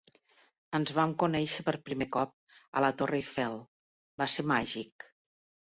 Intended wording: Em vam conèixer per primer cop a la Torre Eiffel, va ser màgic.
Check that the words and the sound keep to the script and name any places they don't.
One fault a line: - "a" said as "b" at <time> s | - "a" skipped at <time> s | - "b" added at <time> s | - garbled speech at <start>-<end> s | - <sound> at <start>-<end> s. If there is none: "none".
- "Em" said as "Ens" at 0.8 s